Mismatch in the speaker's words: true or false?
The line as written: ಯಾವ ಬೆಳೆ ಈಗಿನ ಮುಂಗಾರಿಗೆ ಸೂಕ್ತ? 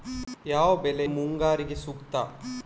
true